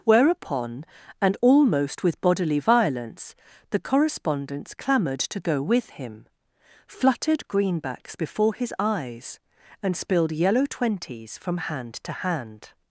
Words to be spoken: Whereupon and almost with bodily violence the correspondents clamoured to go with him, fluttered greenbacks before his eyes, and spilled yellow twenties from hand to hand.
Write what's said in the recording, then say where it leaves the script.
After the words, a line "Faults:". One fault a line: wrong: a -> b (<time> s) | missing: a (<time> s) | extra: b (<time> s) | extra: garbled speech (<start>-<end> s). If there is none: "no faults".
Whereupon and almost with bodily violence the correspondents clamoured to go with him, fluttered greenbacks before his eyes, and spilled yellow twenties from hand to hand.
Faults:
no faults